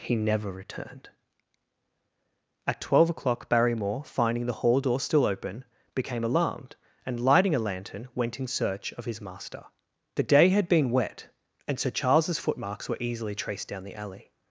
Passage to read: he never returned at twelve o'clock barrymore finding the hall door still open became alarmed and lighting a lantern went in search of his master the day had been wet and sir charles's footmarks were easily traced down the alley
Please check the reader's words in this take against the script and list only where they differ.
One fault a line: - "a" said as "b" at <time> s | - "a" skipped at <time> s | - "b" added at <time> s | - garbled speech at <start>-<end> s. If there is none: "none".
none